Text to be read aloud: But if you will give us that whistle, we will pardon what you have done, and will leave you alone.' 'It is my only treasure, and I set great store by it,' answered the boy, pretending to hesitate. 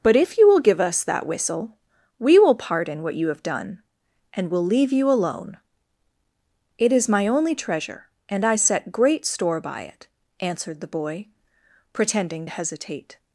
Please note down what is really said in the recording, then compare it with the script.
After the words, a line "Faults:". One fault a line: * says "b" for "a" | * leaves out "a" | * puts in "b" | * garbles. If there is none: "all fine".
But if you will give us that whistle, we will pardon what you have done, and will leave you alone.' 'It is my only treasure, and I set great store by it,' answered the boy, pretending to hesitate.
Faults:
all fine